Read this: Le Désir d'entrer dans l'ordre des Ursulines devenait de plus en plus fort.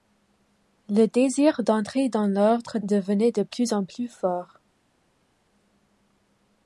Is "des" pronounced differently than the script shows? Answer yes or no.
yes